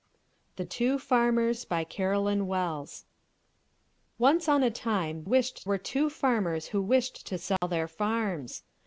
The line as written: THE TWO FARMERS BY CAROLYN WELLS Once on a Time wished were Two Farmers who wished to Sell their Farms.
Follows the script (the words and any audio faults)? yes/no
no